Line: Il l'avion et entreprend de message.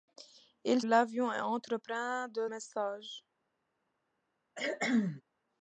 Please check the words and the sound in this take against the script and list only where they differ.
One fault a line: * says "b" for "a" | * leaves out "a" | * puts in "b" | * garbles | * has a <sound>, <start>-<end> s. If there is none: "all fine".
* has a cough, 4.6-5.2 s